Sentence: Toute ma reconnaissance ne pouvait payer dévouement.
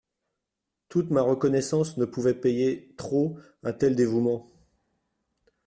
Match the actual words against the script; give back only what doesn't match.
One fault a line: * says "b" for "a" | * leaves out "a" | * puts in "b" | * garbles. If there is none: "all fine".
* puts in "trop un tel"